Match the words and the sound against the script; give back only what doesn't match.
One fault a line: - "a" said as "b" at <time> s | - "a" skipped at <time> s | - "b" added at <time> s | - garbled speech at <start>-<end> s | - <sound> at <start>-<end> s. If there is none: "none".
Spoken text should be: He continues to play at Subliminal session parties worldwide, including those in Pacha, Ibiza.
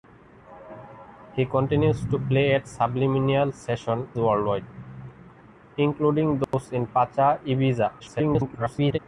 - "parties" skipped at 4.1 s
- dropout at 6.4-6.5 s
- garbled speech at 8.0-9.0 s